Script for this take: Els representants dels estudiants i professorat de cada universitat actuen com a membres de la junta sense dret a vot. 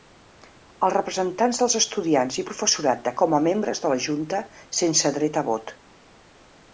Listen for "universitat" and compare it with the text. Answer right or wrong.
wrong